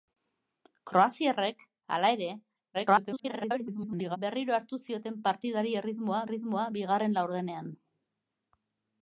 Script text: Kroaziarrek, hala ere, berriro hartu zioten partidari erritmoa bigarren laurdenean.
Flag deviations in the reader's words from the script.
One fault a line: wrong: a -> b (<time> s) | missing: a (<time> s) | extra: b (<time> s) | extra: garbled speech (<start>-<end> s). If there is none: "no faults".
extra: garbled speech (2.7-4.2 s)
extra: erritmoa (6.3 s)